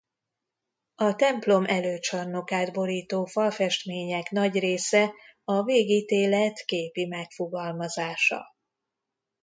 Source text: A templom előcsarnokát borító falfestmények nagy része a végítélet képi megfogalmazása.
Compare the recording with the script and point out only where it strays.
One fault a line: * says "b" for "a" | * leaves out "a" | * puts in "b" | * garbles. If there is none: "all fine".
all fine